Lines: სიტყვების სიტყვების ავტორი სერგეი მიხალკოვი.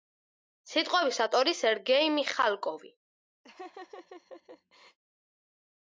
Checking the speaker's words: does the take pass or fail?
fail